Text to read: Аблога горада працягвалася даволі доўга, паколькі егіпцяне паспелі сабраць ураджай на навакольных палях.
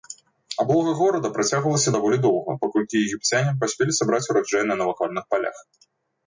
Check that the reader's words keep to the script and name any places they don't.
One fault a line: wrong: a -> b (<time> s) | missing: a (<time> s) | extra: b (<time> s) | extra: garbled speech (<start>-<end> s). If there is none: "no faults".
no faults